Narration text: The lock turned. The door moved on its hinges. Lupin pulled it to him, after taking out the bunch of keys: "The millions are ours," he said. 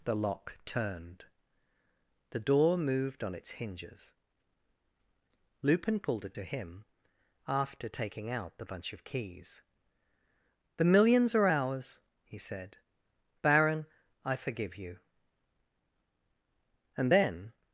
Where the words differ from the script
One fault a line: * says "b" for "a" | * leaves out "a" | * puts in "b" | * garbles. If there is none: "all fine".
* puts in "Baron I forgive you And then"